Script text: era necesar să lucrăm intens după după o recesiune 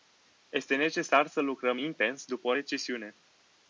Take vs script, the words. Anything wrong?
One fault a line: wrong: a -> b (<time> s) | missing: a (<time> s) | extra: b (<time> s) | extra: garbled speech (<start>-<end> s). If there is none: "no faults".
wrong: era -> este (0.5 s)
missing: după (2.5 s)